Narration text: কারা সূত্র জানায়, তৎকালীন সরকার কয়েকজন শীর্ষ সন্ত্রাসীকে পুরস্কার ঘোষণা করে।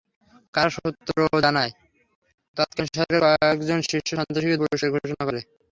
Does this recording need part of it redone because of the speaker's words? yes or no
no